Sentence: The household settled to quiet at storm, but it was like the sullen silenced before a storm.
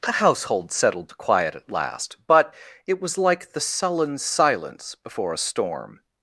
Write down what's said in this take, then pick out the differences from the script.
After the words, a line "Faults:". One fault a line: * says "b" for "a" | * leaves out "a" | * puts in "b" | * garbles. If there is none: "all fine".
The household settled to quiet at last, but it was like the sullen silence before a storm.
Faults:
* says "last" for "storm"
* says "silence" for "silenced"